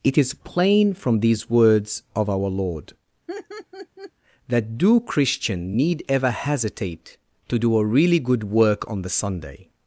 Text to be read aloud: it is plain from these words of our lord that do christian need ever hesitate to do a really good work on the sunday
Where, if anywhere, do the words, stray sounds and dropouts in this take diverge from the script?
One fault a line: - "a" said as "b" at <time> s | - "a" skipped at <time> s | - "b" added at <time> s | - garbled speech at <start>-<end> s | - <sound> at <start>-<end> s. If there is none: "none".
- laugh at 3.3-4.1 s